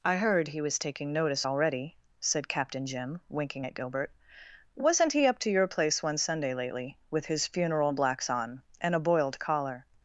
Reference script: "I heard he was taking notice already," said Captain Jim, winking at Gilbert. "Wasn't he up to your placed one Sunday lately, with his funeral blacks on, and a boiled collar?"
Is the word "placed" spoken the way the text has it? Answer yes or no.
no